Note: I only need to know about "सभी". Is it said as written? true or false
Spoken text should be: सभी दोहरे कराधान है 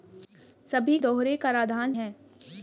true